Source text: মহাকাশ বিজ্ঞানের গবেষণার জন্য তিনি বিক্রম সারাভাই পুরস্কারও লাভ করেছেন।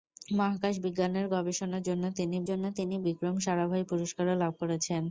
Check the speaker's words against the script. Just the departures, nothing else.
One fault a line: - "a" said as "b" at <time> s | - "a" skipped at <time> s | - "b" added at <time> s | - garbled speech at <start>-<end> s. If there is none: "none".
- "জন্য তিনি" added at 2.4 s